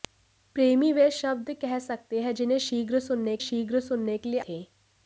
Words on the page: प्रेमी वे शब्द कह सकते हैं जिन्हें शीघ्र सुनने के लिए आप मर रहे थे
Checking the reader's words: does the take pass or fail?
fail